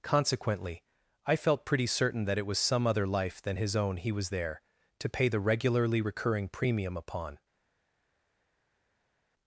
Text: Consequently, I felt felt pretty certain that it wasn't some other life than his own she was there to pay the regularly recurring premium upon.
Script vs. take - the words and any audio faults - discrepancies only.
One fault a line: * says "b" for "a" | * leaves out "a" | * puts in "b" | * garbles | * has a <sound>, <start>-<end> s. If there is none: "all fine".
* leaves out "felt"
* says "was" for "wasn't"
* says "he" for "she"